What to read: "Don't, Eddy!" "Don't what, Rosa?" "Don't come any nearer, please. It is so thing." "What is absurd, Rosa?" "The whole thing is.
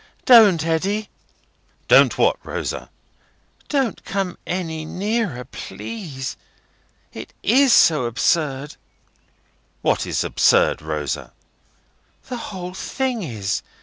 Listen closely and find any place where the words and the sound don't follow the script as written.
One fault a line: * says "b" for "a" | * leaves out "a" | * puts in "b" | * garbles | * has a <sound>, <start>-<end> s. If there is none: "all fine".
* says "absurd" for "thing"